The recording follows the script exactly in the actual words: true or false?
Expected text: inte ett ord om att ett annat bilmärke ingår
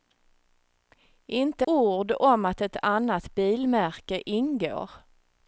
false